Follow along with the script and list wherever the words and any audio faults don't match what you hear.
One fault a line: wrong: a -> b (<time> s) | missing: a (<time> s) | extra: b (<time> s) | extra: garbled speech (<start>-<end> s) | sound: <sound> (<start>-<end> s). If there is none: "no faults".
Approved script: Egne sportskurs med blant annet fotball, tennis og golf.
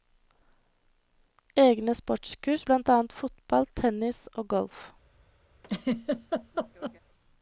missing: med (2.7 s)
sound: laugh (5.6-7.0 s)